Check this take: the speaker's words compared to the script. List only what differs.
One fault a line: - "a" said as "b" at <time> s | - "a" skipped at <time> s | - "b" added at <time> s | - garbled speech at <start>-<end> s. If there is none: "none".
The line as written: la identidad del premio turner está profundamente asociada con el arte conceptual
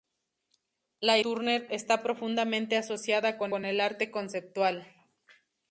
- "identidad del premio" skipped at 1.2 s
- "con" added at 3.5 s